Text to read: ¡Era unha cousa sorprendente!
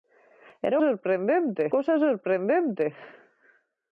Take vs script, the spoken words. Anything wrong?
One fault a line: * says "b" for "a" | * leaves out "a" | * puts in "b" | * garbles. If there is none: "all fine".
* says "sorprendente" for "unha"